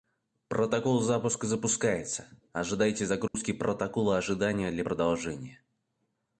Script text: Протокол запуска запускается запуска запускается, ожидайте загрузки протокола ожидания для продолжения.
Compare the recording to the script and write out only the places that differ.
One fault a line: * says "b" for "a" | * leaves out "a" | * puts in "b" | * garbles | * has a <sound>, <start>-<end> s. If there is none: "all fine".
* leaves out "запуска запускается"
* has a dropout, 3.3-3.3 s